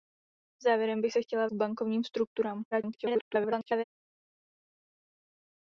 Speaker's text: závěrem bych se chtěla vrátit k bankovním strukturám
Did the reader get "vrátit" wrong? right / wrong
wrong